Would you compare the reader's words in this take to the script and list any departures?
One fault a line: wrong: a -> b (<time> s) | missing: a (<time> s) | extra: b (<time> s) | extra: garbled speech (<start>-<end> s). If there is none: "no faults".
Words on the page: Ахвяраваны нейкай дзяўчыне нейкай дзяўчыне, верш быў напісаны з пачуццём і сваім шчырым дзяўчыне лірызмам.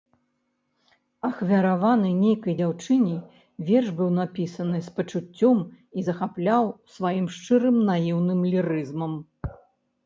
missing: нейкай дзяўчыне (3.2 s)
extra: захапляў (6.1 s)
wrong: дзяўчыне -> наіўным (7.9 s)